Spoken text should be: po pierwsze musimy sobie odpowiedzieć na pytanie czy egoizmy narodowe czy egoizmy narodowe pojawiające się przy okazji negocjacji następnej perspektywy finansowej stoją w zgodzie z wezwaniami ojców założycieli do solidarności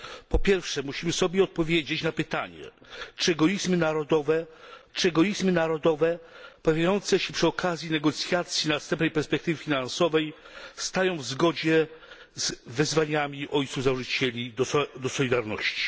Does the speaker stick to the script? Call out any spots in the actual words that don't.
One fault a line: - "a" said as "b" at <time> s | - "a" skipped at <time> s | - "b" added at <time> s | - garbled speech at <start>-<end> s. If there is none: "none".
none